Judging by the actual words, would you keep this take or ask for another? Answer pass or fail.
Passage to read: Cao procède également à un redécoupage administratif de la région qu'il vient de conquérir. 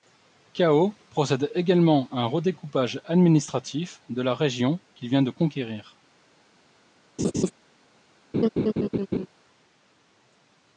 pass